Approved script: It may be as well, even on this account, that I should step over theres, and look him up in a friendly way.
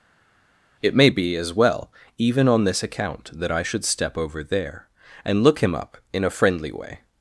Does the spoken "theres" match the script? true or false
false